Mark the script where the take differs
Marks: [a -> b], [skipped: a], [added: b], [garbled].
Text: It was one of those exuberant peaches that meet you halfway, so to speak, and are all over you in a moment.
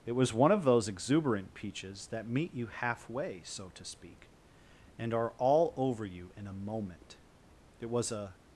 It was one of those exuberant peaches that meet you halfway, so to speak, and are all over you in a moment. [added: It was a]